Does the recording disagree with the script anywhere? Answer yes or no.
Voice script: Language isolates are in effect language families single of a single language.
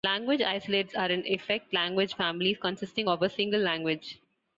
yes